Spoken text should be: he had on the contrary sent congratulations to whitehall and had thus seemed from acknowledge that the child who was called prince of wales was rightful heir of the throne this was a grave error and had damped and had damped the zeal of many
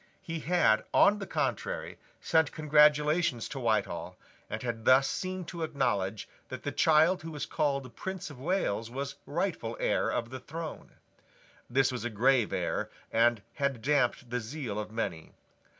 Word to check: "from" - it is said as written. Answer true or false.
false